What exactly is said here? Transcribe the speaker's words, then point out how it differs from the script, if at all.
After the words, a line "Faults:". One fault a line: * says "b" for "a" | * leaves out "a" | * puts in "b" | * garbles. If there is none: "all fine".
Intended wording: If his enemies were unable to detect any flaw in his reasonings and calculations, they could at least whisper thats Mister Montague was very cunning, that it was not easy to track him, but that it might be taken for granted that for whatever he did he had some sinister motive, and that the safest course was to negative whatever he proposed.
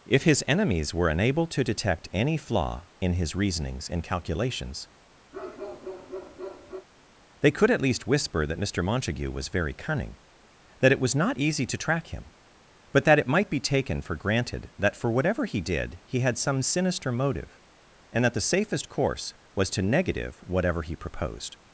If his enemies were unable to detect any flaw in his reasonings and calculations, they could at least whisper that Mister Montague was very cunning, that it was not easy to track him, but that it might be taken for granted that for whatever he did he had some sinister motive, and that the safest course was to negative whatever he proposed.
Faults:
* says "that" for "thats"